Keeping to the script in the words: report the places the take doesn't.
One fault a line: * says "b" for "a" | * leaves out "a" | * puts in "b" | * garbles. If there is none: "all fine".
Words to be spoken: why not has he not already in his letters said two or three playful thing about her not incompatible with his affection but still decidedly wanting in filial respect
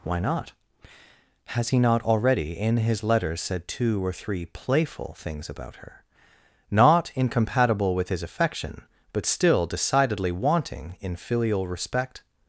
* says "things" for "thing"